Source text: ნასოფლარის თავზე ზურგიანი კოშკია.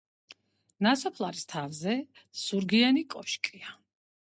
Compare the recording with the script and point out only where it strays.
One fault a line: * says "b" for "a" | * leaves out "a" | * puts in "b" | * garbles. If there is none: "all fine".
all fine